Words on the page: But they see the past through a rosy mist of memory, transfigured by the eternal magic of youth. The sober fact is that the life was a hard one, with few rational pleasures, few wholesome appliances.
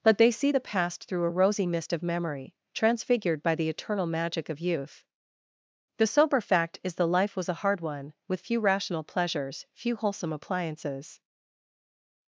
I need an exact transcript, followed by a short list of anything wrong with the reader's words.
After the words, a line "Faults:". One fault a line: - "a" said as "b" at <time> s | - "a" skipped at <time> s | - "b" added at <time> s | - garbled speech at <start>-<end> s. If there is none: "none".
But they see the past through a rosy mist of memory, transfigured by the eternal magic of youth. The sober fact is the life was a hard one, with few rational pleasures, few wholesome appliances.
Faults:
- "that" skipped at 6.9 s